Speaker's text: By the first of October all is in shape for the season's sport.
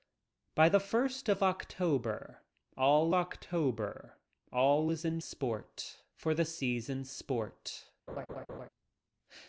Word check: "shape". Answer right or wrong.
wrong